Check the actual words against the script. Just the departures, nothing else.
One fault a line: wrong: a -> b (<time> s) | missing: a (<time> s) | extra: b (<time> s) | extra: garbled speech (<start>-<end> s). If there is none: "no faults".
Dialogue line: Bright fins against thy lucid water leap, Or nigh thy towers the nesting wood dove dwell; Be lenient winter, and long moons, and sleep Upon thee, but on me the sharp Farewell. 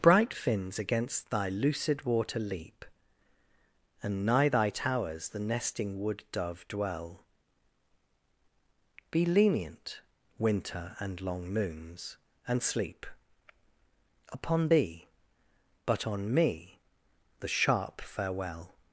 wrong: Or -> And (4.0 s)